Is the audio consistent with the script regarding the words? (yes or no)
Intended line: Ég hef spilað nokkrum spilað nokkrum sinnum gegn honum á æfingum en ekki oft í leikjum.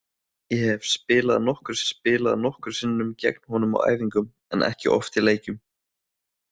yes